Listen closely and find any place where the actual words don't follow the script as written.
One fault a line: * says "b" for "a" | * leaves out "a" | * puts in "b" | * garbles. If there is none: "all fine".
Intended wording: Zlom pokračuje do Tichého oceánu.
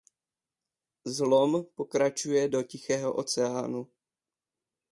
all fine